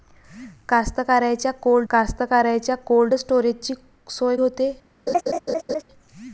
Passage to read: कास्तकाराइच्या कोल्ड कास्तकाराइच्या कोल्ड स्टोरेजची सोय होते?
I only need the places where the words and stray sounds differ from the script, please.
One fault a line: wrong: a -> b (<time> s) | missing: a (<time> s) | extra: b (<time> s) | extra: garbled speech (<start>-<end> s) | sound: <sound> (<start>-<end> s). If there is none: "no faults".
sound: laugh (5.1-5.8 s)